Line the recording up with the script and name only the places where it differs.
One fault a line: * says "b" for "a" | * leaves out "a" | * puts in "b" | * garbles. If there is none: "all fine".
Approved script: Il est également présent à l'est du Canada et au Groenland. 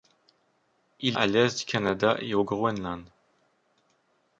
* leaves out "est également présent"